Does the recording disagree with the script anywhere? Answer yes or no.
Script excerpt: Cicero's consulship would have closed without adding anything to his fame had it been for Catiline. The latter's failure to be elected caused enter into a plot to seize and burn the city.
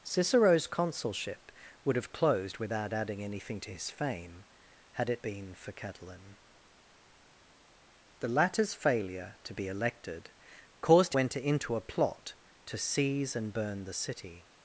no